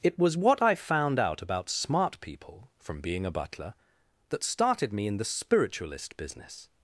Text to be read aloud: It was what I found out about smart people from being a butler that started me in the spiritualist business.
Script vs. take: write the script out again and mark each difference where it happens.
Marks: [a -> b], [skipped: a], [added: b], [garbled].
It was what I found out about smart people from being a butler that started me in the spiritualist business.